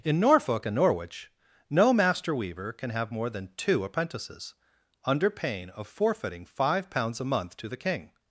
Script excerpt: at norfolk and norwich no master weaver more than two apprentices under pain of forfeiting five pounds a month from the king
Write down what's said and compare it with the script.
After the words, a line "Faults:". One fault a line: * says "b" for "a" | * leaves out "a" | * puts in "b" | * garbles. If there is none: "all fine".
in norfolk and norwich no master weaver can have more than two apprentices under pain of forfeiting five pounds a month to the king
Faults:
* says "in" for "at"
* puts in "can have"
* says "to" for "from"